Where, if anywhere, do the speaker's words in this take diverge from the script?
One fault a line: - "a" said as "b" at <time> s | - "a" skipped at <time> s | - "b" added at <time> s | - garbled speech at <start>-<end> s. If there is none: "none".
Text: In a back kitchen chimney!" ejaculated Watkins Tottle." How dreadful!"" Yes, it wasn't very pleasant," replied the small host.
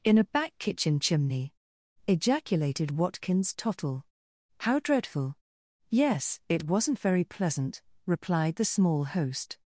none